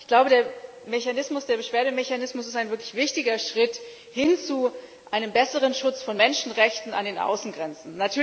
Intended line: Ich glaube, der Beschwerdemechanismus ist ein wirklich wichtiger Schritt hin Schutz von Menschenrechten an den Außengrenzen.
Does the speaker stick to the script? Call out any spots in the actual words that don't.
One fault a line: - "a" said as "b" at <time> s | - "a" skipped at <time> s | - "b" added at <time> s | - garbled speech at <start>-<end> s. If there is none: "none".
- "zu einem besseren" added at 4.4 s